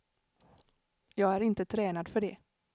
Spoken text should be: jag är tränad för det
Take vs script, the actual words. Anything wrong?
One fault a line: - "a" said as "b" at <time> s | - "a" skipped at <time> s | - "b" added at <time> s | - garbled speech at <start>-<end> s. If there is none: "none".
- "inte" added at 1.4 s